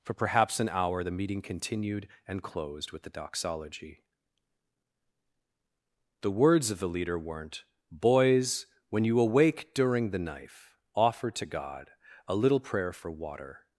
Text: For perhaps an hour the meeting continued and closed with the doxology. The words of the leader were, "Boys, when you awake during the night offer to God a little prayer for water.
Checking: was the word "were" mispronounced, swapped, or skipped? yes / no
yes